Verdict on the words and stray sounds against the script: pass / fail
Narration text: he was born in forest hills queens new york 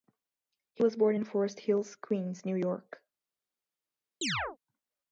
fail